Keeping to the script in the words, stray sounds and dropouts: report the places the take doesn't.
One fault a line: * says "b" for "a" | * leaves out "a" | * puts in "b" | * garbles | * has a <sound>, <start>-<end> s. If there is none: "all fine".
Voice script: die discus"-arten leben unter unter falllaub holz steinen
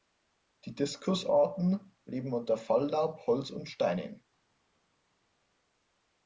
* leaves out "unter"
* puts in "und"